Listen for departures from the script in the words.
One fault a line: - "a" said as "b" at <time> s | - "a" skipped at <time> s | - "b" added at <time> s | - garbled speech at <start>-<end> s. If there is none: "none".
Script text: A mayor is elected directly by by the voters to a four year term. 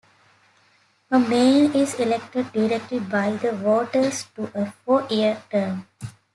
- "by" skipped at 3.3 s